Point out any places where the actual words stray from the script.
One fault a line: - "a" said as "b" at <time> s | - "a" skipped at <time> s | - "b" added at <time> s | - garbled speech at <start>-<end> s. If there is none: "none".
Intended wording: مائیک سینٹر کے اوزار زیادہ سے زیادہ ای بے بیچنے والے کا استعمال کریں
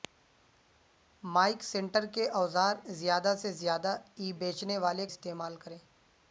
- "بے" skipped at 4.3 s
- "کا" skipped at 5.1 s